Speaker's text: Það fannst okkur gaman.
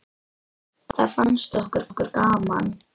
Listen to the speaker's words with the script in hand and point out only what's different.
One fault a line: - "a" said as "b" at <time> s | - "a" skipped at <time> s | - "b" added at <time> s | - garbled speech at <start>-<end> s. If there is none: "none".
- "okkur" added at 1.9 s